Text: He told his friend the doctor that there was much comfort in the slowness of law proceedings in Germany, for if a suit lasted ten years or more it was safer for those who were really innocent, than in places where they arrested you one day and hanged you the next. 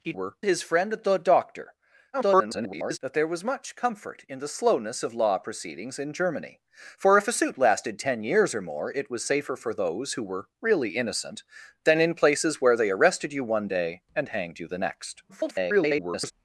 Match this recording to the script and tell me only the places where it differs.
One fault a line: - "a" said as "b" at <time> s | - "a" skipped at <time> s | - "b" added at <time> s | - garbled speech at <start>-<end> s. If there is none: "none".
- "told" said as "were" at 0.1 s
- garbled speech at 2.1-3.0 s
- garbled speech at 15.3-16.3 s